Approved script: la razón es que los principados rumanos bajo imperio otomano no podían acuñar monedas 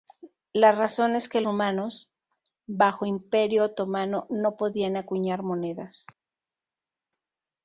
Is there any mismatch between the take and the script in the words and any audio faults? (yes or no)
yes